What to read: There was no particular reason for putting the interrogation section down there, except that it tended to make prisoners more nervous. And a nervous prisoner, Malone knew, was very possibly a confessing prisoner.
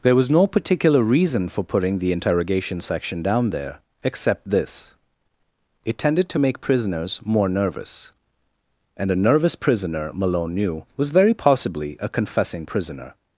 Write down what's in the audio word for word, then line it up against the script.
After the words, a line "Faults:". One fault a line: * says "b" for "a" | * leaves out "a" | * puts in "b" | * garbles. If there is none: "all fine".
There was no particular reason for putting the interrogation section down there, except this it tended to make prisoners more nervous. And a nervous prisoner, Malone knew, was very possibly a confessing prisoner.
Faults:
* says "this" for "that"